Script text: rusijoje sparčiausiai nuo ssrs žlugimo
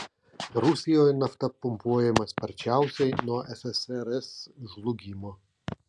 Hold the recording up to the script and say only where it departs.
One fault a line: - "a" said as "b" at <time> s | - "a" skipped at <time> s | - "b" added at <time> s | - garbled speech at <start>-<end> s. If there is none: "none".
- "nafta pumpuojama" added at 1.2 s